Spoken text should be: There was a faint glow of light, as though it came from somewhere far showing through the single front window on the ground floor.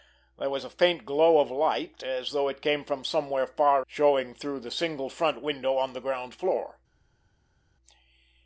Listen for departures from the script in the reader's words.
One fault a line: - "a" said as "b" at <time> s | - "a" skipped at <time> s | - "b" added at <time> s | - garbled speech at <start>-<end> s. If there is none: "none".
none